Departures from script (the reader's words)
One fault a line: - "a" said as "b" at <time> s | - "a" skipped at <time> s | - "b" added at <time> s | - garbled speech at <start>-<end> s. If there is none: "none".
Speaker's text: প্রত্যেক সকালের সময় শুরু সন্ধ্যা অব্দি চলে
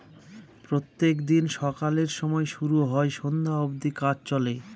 - "দিন" added at 1.2 s
- "হয়" added at 2.8 s
- "কাজ" added at 4.0 s